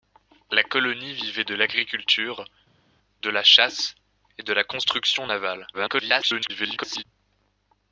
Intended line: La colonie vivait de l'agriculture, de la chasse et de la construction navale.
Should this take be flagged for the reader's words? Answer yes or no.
yes